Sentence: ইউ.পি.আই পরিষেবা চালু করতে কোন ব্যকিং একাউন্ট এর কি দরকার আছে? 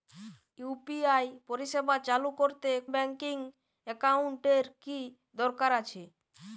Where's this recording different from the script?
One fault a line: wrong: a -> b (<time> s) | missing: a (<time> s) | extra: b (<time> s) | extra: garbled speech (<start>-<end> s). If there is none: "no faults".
missing: কোন (2.7 s)